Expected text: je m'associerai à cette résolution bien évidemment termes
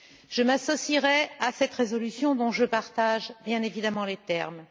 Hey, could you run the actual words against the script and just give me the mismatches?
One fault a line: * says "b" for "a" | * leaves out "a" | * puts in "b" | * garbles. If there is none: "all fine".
* puts in "dont je partage"
* puts in "les"